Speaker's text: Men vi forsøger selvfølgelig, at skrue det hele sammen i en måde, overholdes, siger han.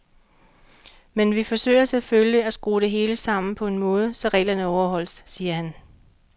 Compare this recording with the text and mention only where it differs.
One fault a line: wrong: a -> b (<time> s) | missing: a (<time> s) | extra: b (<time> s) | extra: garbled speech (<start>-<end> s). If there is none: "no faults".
wrong: i -> på (3.5 s)
extra: så reglerne (4.1 s)